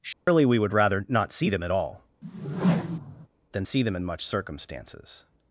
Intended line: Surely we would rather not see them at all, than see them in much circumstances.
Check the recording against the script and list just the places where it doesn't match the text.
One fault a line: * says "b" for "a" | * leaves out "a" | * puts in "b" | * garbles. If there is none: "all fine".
all fine